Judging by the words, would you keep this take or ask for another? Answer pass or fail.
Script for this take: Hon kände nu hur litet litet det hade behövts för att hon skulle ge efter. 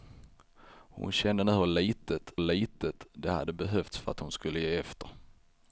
pass